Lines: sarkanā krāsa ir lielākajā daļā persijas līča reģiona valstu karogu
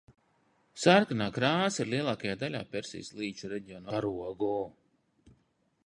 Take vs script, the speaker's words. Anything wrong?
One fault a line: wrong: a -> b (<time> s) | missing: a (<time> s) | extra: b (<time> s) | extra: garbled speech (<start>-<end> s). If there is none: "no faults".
missing: valstu (3.9 s)